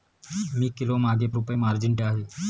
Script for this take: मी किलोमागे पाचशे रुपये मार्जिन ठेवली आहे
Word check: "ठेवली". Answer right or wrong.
wrong